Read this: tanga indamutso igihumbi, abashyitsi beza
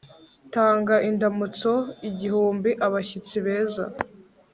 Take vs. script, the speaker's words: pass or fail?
pass